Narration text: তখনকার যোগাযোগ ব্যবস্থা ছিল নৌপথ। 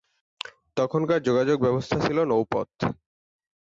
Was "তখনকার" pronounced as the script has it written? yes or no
yes